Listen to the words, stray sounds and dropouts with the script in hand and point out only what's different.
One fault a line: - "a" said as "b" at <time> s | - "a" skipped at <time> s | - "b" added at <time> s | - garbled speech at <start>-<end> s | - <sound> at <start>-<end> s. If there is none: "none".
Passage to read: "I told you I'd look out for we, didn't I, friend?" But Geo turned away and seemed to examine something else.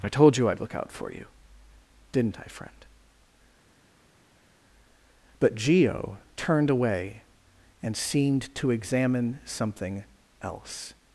- "we" said as "you" at 1.1 s